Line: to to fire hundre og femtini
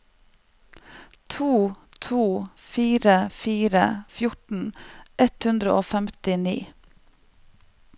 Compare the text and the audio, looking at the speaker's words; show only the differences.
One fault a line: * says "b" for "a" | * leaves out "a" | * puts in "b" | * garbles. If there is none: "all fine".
* puts in "fire fjorten ett"